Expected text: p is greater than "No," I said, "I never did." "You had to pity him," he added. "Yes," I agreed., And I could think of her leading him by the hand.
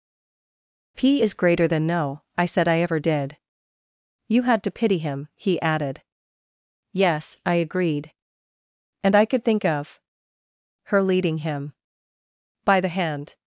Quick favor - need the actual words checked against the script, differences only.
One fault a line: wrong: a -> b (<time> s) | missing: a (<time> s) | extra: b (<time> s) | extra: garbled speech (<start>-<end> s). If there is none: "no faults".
wrong: never -> ever (2.8 s)